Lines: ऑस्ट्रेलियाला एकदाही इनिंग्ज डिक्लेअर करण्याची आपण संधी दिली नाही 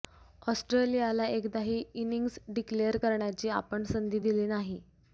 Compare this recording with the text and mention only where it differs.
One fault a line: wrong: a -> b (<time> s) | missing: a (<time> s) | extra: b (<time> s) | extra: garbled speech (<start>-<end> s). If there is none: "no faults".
no faults